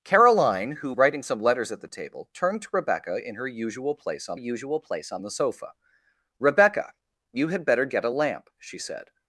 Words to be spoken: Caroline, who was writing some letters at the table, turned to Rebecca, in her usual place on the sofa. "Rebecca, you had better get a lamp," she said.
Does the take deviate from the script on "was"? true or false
true